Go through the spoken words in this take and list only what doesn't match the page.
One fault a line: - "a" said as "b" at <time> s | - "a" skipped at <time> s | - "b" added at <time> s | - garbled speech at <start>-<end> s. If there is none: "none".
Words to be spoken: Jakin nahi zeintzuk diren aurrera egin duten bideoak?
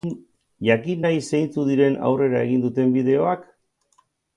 none